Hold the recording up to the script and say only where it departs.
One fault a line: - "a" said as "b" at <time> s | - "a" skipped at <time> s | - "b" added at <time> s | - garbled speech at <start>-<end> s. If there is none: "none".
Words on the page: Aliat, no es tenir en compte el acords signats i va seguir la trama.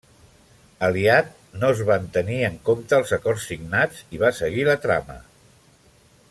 - "van" added at 1.9 s
- "el" said as "els" at 3.0 s